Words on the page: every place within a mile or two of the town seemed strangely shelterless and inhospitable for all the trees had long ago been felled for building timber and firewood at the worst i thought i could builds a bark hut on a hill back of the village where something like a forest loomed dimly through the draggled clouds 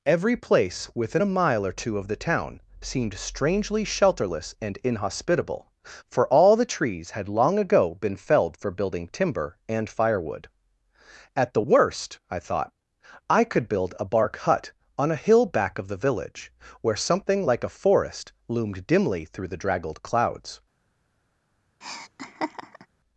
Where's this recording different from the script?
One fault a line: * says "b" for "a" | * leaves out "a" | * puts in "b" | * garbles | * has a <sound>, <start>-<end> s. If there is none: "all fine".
* says "build" for "builds"
* has a laugh, 21.8-22.9 s